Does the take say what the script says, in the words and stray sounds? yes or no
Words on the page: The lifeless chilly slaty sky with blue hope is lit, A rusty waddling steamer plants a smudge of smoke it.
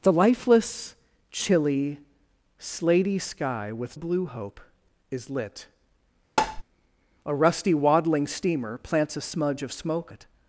no